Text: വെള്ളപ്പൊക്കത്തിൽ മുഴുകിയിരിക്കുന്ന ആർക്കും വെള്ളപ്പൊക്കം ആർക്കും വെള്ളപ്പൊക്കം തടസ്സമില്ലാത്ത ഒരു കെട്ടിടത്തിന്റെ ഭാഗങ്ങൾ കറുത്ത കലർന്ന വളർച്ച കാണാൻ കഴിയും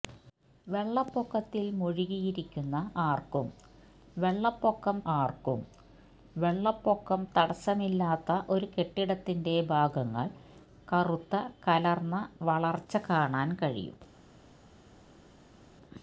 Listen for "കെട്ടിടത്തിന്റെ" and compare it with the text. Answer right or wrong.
right